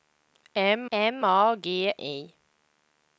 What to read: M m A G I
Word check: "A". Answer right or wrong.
right